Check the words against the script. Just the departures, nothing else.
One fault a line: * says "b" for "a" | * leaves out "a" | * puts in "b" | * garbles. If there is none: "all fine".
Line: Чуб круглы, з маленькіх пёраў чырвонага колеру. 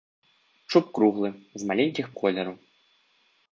* leaves out "пёраў чырвонага"